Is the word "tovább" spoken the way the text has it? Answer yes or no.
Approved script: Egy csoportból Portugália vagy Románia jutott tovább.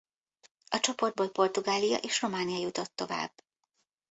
yes